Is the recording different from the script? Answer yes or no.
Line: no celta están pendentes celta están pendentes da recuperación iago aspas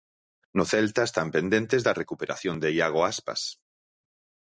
yes